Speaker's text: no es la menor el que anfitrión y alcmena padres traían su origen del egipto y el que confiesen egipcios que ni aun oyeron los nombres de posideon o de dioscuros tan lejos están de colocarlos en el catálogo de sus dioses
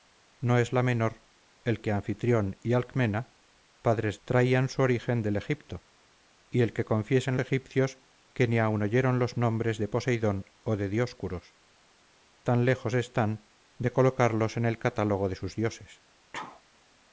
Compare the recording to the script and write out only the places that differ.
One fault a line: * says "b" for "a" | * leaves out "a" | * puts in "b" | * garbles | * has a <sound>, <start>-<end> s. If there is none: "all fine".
* has a sneeze, 16.3-16.6 s